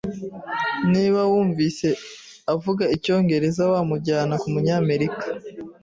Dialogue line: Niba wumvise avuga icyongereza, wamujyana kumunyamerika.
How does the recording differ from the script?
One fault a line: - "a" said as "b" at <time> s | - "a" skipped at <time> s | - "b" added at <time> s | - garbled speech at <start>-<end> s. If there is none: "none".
none